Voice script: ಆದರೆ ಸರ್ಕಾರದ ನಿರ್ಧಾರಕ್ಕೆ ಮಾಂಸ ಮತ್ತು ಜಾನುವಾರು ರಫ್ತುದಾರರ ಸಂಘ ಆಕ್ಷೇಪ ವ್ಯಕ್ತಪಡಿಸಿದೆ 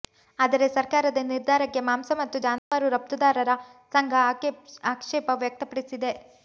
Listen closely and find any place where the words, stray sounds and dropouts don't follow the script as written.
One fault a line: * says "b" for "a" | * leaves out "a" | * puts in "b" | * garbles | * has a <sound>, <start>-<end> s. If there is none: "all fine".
* has a dropout, 2.6-2.7 s